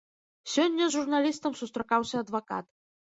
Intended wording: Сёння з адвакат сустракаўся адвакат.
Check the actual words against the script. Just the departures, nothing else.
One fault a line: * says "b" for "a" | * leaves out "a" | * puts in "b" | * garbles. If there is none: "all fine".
* says "журналістам" for "адвакат"